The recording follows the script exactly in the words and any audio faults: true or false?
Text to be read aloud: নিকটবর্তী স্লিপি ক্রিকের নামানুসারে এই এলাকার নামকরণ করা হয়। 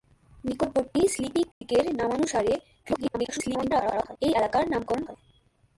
false